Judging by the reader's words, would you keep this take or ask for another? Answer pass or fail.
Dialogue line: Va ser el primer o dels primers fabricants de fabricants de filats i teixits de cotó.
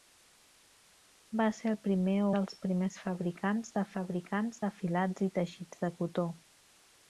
pass